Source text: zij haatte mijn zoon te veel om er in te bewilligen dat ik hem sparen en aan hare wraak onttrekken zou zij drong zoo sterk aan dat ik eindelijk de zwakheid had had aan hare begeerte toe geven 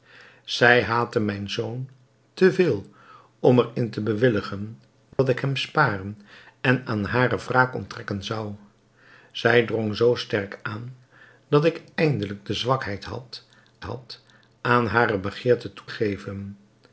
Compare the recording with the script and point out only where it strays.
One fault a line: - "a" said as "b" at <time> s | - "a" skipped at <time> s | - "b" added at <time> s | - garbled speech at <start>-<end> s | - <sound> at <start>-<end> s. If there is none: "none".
- dropout at 5.1-5.2 s